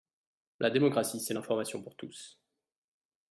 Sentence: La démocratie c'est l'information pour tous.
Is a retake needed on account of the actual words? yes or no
no